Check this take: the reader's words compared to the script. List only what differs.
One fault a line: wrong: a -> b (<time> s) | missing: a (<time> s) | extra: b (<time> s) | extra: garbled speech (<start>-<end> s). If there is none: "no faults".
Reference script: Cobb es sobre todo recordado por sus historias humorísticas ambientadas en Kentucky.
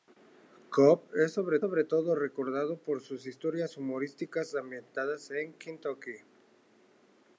extra: sobre (1.6 s)